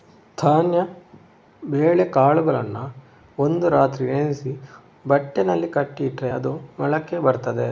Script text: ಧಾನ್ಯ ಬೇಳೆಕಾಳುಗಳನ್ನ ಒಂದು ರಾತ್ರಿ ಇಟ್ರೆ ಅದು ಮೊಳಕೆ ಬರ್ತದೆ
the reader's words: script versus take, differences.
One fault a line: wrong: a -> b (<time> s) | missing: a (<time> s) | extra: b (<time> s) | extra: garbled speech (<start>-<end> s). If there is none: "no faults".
extra: ನೆನೆಸಿ ಬಟ್ಟೆನಲ್ಲಿ ಕಟ್ಟಿ (4.1 s)